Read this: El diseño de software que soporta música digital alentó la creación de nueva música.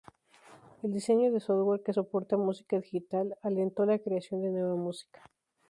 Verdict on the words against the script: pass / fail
pass